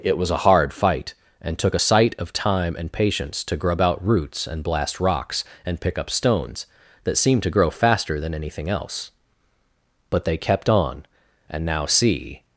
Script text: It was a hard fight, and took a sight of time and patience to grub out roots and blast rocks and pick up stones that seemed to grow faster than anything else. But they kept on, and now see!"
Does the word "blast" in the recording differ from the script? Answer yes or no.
no